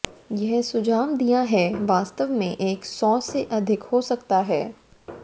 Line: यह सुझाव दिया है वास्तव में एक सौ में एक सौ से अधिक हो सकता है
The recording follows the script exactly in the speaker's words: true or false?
false